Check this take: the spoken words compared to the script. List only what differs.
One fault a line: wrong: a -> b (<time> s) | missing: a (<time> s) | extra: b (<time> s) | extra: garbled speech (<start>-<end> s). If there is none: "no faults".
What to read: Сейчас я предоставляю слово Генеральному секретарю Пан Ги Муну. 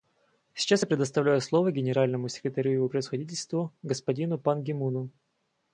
extra: Его Превосходительству господину (2.7 s)